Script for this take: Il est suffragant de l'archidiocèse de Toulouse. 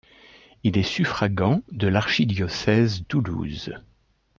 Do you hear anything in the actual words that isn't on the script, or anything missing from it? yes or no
yes